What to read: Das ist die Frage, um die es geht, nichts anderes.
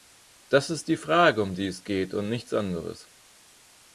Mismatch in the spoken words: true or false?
true